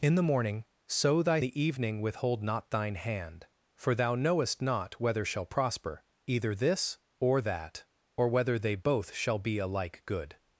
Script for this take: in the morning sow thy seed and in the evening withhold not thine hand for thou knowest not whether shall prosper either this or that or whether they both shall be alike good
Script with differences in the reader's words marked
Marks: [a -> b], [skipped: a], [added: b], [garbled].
in the morning sow thy [skipped: seed and in] the evening withhold not thine hand for thou knowest not whether shall prosper either this or that or whether they both shall be alike good